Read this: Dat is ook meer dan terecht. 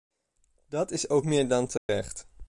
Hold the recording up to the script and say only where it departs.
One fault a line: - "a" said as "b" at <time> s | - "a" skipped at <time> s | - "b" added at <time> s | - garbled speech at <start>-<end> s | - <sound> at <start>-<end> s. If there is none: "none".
- dropout at 1.8-1.9 s